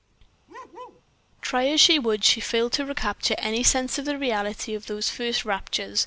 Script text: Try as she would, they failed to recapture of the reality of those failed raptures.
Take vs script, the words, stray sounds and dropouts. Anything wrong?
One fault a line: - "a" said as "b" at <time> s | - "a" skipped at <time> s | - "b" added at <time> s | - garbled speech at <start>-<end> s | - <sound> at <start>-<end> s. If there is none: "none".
- bark at 0.5-1.0 s
- "they" said as "she" at 2.2 s
- "any sense" added at 3.4 s
- "failed" said as "first" at 5.1 s